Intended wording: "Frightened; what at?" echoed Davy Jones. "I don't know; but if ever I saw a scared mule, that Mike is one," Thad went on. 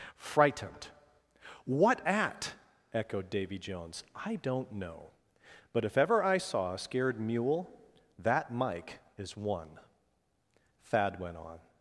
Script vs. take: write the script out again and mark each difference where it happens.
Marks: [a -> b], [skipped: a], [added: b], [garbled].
"Frightened; what at?" echoed Davy Jones. "I don't know; but if ever I saw a scared mule, that Mike is one," Thad went on.